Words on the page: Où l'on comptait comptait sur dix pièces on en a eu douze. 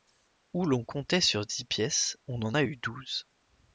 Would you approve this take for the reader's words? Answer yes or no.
no